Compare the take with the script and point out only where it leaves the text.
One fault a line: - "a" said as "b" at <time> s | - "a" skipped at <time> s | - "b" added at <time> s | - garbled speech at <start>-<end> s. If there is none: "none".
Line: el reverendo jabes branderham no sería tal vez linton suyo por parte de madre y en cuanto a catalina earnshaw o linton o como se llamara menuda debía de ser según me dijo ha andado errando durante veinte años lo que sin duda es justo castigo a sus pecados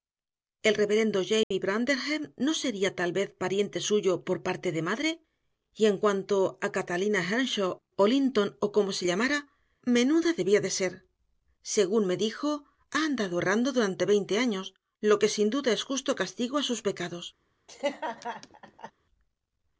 - "linton" said as "pariente" at 3.4 s